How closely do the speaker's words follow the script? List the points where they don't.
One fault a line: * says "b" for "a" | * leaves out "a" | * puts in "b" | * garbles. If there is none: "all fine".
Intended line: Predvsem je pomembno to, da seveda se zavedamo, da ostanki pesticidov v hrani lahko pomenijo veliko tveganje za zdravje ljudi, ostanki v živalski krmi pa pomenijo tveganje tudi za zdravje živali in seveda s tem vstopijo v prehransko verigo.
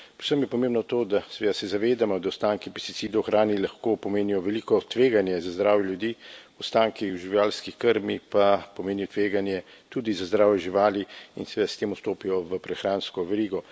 all fine